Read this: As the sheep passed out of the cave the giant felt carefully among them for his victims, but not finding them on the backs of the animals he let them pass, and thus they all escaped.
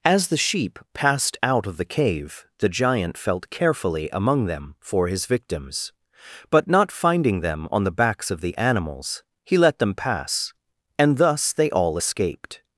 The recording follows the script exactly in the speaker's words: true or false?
true